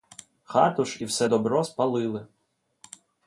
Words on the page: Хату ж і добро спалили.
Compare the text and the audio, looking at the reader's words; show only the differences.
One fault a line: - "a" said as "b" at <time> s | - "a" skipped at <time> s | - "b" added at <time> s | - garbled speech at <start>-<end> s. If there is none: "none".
- "все" added at 1.0 s